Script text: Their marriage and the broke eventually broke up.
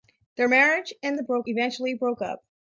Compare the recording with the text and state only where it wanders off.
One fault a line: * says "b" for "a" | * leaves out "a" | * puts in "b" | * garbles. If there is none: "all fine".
all fine